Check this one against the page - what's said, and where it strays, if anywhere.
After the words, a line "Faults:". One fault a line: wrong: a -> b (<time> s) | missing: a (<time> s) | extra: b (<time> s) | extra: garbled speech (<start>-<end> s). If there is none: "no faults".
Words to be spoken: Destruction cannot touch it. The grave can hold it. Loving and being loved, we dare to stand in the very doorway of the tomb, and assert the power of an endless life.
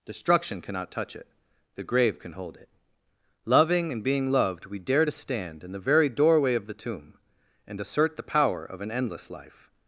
Destruction cannot touch it. The grave can hold it. Loving and being loved, we dare to stand in the very doorway of the tomb, and assert the power of an endless life.
Faults:
no faults